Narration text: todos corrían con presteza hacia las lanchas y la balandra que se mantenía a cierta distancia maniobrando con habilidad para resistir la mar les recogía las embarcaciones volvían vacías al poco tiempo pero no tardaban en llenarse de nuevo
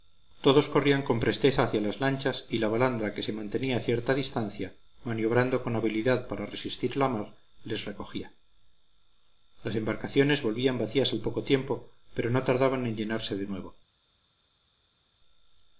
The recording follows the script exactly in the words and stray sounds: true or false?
true